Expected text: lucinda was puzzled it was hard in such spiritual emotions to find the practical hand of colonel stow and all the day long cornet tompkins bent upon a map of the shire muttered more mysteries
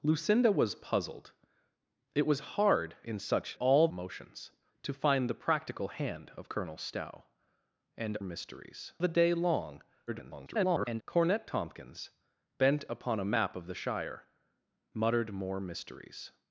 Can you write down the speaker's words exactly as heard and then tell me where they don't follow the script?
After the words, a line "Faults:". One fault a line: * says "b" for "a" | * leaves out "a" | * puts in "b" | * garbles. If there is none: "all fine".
lucinda was puzzled it was hard in such all emotions to find the practical hand of colonel stow and mysteries the day long [garbled] cornet tompkins bent upon a map of the shire muttered more mysteries
Faults:
* says "all" for "spiritual"
* says "mysteries" for "all"
* garbles